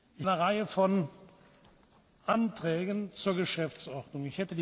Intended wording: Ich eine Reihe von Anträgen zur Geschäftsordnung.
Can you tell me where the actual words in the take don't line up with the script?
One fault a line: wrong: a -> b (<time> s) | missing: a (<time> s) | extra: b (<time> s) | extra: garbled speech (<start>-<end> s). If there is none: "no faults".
no faults